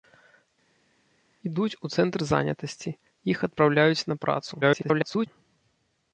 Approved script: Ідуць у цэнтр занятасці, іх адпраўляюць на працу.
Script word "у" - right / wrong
right